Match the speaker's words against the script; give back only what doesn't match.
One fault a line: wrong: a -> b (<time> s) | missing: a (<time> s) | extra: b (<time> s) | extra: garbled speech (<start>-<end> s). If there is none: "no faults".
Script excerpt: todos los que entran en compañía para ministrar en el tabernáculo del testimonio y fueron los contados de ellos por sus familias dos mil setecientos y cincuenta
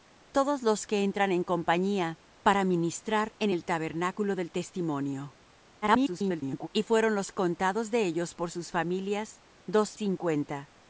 extra: garbled speech (5.8-6.7 s)
missing: mil setecientos y (10.0 s)